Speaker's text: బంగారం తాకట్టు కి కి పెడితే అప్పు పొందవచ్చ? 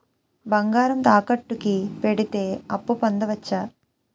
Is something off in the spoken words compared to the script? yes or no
yes